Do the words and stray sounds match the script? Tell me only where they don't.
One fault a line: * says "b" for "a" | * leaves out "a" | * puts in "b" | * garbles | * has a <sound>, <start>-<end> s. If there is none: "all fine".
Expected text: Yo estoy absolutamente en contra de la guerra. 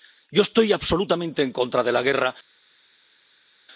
all fine